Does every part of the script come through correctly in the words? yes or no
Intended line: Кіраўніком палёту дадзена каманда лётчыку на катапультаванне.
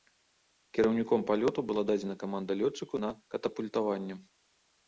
no